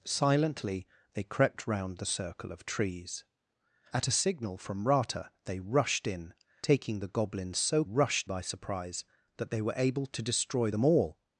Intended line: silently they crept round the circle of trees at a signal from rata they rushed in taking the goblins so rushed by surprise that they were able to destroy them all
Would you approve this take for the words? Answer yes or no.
yes